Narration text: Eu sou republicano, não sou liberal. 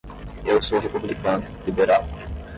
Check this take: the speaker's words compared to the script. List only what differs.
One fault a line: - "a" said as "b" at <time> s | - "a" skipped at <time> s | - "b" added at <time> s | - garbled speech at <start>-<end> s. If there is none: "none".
- "não sou" skipped at 1.5 s